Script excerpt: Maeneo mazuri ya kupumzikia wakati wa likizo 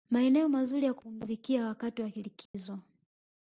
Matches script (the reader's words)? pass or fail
pass